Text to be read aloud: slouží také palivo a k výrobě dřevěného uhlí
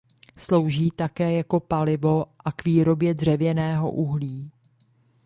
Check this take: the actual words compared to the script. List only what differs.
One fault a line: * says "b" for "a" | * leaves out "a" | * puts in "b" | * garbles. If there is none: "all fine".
* puts in "jako"